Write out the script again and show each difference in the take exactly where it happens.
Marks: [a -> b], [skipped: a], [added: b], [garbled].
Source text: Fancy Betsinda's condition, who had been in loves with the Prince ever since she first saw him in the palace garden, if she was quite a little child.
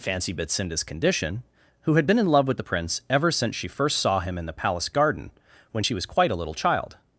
Fancy Betsinda's condition, who had been in [loves -> love] with the Prince ever since she first saw him in the palace garden, [if -> when] she was quite a little child.